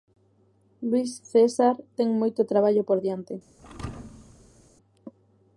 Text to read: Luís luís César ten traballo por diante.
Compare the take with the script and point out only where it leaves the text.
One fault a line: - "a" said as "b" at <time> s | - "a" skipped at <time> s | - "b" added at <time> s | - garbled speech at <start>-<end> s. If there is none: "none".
- "luís" skipped at 1.1 s
- "moito" added at 2.2 s